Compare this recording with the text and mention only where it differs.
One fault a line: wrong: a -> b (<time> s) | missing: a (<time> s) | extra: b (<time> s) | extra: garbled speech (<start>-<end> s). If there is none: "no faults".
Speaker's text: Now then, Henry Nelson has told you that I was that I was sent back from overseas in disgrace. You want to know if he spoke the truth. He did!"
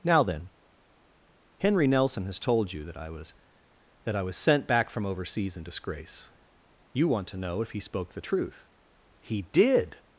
no faults